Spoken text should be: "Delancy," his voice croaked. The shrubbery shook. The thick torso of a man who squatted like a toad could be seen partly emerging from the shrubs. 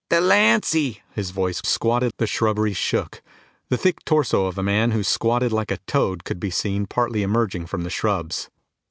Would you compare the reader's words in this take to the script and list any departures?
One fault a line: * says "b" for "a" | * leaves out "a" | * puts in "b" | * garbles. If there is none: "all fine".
* says "squatted" for "croaked"